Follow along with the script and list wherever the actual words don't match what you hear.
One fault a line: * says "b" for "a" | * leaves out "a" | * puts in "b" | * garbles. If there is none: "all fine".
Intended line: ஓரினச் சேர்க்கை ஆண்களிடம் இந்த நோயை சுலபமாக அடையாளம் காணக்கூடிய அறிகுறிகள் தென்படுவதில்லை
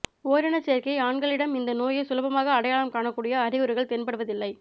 all fine